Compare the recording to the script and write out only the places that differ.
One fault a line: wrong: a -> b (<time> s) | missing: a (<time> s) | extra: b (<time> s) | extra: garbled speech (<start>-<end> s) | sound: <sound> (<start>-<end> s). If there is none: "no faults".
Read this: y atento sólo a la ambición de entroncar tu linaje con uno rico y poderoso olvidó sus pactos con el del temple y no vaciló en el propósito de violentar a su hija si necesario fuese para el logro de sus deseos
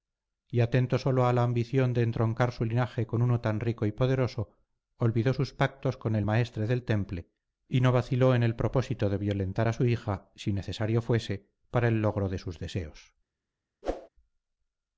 wrong: tu -> su (2.5 s)
extra: tan (3.4 s)
extra: maestre (6.2 s)
sound: whoosh (13.8-14.1 s)